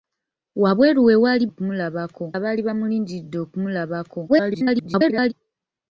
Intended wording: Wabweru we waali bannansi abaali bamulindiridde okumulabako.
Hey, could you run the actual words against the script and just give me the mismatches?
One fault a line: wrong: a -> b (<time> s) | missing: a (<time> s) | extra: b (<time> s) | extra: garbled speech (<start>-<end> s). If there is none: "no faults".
wrong: bannansi -> okumulabako (1.5 s)
extra: garbled speech (4.3-5.3 s)